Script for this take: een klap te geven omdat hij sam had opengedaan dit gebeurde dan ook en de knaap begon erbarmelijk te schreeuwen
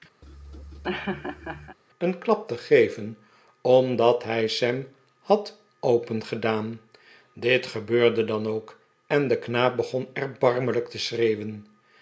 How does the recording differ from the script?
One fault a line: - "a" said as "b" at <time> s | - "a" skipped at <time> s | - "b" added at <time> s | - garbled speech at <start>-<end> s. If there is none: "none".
none